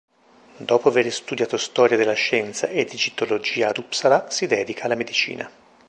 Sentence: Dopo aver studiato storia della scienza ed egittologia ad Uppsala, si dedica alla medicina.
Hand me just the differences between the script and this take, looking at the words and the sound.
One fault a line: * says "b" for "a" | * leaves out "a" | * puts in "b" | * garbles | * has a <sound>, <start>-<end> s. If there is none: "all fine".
all fine